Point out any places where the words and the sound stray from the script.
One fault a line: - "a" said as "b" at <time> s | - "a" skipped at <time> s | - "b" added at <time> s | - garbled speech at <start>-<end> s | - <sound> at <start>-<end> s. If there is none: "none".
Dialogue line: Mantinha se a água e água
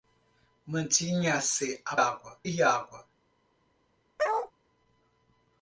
- bark at 4.2-4.5 s